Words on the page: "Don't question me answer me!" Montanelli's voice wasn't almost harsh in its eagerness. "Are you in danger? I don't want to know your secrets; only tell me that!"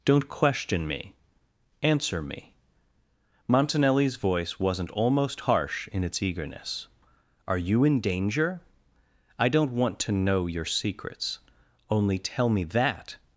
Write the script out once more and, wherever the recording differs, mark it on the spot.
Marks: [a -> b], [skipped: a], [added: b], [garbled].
"Don't question me answer me!" Montanelli's voice wasn't almost harsh in its eagerness. "Are you in danger? I don't want to know your secrets; only tell me that!"